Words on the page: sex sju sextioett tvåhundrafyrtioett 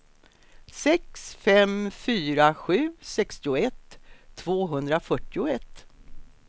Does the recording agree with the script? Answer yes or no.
no